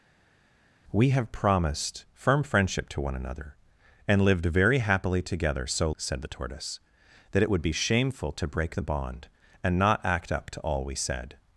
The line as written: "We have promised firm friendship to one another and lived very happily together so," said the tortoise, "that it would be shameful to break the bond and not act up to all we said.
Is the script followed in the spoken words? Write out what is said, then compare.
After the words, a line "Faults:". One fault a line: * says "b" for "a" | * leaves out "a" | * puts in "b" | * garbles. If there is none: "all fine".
"We have promised firm friendship to one another and lived very happily together so," said the tortoise, "that it would be shameful to break the bond and not act up to all we said.
Faults:
all fine